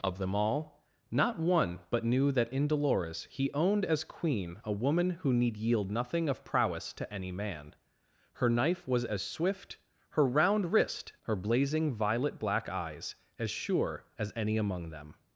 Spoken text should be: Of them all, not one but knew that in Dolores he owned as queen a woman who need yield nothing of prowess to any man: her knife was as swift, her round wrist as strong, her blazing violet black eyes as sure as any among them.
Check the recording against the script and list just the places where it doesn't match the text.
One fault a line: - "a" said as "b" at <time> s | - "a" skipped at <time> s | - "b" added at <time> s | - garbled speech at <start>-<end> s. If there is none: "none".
- "as strong" skipped at 11.1 s